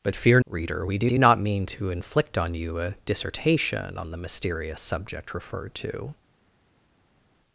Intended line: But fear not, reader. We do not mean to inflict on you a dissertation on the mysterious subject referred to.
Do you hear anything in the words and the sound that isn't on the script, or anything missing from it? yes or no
yes